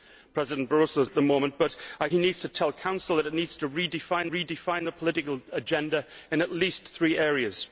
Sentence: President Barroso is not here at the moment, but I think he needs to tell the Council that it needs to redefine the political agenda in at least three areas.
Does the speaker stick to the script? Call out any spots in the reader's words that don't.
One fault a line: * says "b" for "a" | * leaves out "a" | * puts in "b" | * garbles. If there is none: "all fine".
* leaves out "not here"
* leaves out "think"
* puts in "redefine"